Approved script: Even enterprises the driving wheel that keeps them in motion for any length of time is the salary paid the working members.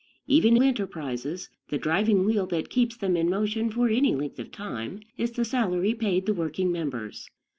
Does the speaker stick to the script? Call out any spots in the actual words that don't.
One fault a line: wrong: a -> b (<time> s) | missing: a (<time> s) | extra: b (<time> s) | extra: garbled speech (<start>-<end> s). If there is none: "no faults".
no faults